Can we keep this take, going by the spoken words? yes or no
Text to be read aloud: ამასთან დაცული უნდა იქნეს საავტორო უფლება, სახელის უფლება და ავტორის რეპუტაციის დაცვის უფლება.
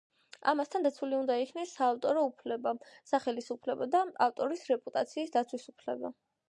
yes